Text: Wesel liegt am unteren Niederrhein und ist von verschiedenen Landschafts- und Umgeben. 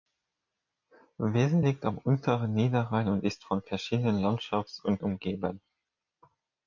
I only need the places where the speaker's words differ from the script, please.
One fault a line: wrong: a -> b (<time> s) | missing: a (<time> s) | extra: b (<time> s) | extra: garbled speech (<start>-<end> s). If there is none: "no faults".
no faults